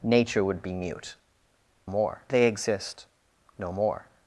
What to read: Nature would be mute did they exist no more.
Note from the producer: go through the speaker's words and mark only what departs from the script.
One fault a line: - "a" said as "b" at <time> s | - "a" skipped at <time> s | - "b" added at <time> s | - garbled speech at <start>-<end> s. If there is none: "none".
- "did" said as "more" at 1.9 s